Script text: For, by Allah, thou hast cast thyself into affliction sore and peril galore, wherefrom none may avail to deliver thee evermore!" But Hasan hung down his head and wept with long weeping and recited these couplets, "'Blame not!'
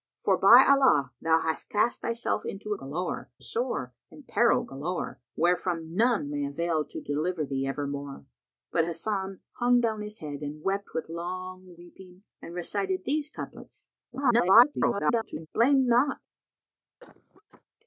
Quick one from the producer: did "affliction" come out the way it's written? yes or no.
no